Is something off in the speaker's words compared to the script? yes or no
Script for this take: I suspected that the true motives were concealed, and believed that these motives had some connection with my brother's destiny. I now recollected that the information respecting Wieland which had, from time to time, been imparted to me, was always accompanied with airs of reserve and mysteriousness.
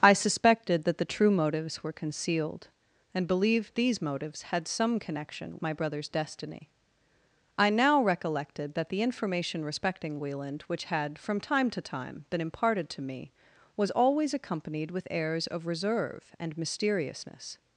yes